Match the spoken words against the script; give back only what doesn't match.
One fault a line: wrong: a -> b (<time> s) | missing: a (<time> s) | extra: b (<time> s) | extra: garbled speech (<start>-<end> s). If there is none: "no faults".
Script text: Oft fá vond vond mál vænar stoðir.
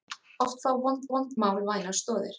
no faults